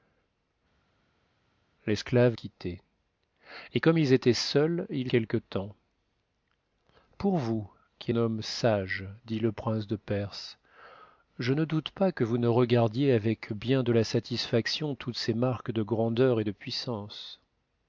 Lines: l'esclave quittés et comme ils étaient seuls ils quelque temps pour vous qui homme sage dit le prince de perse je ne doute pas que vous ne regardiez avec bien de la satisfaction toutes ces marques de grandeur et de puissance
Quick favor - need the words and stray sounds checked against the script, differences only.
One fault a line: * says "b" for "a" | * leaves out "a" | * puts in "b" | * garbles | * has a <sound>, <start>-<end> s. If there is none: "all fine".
all fine